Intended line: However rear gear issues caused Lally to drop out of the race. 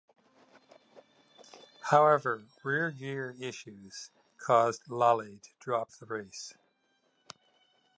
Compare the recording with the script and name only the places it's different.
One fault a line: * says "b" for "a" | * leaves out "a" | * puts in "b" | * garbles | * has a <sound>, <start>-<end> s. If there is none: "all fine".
* leaves out "out"